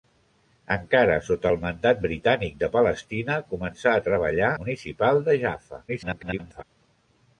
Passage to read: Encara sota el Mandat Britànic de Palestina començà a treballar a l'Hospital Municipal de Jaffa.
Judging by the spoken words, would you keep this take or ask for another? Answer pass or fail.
fail